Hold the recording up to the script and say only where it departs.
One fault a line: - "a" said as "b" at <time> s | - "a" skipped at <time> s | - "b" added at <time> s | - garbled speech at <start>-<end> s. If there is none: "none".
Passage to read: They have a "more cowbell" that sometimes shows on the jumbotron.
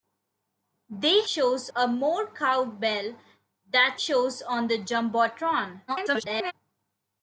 - "have" said as "shows" at 1.3 s
- "sometimes" skipped at 4.0 s
- garbled speech at 5.9-6.5 s